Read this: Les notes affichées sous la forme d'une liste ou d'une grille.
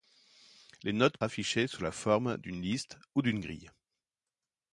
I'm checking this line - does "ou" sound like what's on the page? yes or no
yes